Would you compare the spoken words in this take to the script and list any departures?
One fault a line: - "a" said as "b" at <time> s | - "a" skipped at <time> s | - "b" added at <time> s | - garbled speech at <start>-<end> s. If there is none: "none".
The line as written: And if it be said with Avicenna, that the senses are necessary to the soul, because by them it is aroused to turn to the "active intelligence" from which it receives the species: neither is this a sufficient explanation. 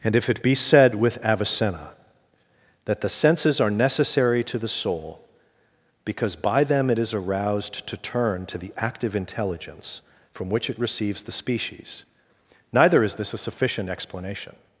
none